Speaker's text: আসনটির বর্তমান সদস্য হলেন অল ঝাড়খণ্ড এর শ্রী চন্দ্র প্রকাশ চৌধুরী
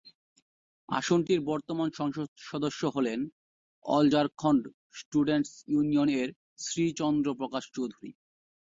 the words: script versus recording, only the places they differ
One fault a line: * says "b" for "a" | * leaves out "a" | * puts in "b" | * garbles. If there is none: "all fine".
* puts in "সংসদ"
* puts in "স্টুডেন্টস ইউনিয়ন"